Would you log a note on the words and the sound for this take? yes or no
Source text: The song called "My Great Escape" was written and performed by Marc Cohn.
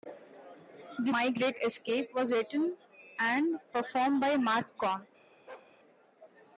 yes